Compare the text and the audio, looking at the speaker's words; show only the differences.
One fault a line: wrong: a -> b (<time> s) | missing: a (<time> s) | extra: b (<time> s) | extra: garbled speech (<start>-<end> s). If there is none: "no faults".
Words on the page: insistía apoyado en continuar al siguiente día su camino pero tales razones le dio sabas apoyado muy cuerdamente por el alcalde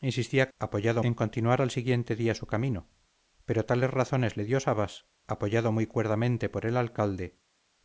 no faults